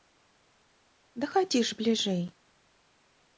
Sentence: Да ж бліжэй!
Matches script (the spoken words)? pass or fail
fail